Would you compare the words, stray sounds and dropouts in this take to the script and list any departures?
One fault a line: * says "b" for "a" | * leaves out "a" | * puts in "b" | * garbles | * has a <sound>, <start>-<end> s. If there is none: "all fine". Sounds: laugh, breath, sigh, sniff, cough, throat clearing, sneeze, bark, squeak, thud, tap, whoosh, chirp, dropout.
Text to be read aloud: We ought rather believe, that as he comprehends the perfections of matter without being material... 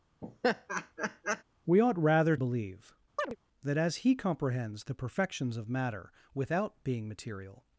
* has a laugh, 0.2-1.4 s
* has a chirp, 3.2-3.4 s